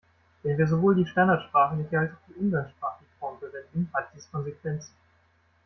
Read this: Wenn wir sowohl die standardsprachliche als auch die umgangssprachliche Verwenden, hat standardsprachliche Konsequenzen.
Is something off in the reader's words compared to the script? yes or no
yes